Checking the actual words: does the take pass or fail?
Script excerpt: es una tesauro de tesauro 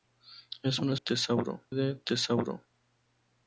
pass